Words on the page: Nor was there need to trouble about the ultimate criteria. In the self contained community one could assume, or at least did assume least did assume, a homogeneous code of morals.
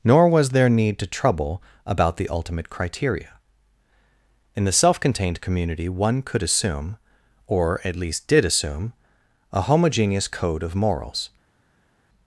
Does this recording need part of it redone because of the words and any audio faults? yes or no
yes